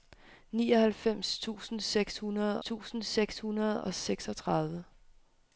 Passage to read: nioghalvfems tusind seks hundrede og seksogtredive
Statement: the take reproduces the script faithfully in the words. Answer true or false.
false